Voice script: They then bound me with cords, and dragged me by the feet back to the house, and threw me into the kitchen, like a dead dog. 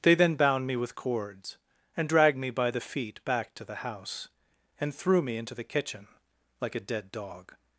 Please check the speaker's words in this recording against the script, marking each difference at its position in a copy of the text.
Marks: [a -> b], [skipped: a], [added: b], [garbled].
They then bound me with cords, and dragged me by the feet back to the house, and threw me into the kitchen, like a dead dog.